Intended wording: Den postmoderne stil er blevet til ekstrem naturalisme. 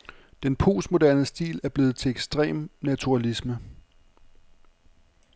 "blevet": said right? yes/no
yes